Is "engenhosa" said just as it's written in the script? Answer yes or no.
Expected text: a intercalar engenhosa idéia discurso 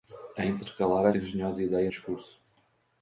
yes